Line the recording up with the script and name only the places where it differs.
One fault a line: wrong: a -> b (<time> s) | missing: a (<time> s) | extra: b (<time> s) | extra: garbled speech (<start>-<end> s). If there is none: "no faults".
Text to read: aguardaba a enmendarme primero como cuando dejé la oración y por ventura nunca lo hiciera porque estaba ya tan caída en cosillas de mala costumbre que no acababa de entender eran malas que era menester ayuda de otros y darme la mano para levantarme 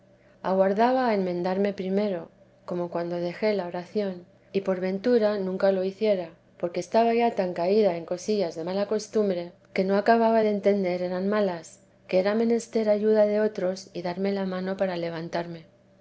no faults